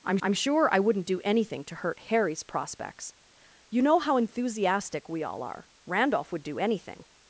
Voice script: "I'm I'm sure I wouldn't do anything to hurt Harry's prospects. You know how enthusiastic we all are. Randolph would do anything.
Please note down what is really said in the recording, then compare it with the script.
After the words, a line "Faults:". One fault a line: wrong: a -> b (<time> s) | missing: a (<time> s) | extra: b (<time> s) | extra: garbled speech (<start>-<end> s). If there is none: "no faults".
"I'm I'm sure I wouldn't do anything to hurt Harry's prospects. You know how enthusiastic we all are. Randolph would do anything.
Faults:
no faults